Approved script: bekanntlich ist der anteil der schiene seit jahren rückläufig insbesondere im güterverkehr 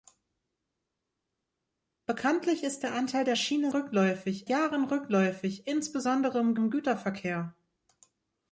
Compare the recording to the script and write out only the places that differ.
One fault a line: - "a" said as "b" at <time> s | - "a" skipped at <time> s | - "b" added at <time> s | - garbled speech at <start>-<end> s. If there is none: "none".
- "seit" said as "rückläufig" at 3.7 s
- "im" added at 6.5 s